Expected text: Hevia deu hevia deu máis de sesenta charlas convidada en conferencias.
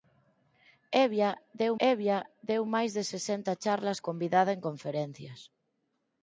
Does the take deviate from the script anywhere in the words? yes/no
no